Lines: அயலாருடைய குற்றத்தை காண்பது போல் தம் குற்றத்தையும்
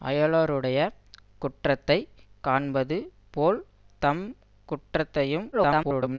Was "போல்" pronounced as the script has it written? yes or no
yes